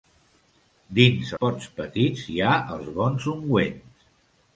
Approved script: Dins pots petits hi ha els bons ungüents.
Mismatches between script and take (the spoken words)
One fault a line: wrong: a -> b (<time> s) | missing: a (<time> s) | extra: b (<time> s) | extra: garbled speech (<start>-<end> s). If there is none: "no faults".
no faults